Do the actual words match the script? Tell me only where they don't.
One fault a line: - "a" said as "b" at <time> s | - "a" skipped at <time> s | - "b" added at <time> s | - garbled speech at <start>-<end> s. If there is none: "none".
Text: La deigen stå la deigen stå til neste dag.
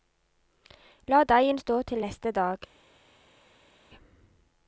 - "la deigen stå" skipped at 1.8 s